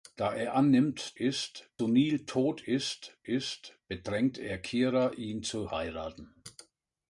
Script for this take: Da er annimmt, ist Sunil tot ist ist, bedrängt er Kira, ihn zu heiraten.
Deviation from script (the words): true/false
false